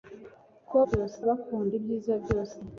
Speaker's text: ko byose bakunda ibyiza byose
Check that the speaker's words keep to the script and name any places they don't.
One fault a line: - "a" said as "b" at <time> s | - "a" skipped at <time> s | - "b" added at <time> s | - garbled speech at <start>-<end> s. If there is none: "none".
none